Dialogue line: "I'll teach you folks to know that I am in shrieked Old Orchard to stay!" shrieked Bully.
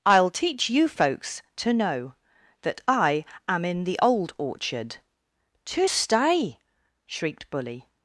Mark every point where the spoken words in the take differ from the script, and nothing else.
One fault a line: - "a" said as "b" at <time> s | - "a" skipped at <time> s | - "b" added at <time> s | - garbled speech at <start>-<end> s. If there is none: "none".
- "shrieked" said as "the" at 3.8 s